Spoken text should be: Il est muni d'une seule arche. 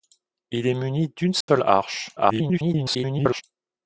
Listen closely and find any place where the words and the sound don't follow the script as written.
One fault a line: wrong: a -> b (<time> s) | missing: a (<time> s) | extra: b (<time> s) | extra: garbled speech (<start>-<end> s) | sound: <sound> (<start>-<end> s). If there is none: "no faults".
sound: dropout (1.4-1.5 s)
extra: garbled speech (2.2-3.4 s)